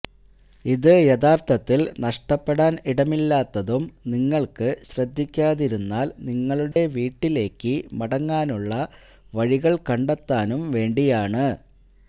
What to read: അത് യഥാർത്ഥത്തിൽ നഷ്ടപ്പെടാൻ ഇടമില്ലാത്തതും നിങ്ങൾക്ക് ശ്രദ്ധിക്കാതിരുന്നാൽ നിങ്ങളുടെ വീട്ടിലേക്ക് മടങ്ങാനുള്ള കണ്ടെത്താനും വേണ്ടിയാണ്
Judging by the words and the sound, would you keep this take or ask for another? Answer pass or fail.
fail